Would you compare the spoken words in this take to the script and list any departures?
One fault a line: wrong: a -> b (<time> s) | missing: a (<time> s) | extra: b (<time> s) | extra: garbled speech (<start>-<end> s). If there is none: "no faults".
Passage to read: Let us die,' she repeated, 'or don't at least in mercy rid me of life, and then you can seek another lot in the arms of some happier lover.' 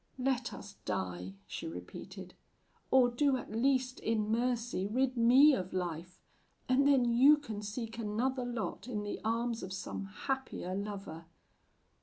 wrong: don't -> do (3.1 s)